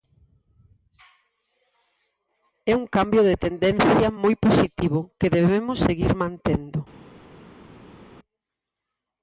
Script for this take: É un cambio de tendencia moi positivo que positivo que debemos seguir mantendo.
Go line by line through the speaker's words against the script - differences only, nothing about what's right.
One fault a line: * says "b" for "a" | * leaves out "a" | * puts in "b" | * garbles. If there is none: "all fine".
* leaves out "positivo que"